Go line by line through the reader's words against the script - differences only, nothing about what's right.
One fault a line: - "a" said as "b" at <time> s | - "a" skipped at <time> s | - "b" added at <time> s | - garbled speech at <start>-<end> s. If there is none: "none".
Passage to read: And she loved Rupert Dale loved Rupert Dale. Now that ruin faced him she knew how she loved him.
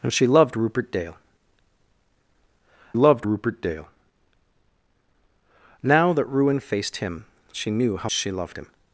none